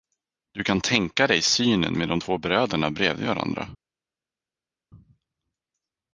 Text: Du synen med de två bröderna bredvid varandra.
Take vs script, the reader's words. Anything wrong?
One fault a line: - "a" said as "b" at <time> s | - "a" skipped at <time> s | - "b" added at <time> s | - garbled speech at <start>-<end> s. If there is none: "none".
- "kan tänka dig" added at 0.6 s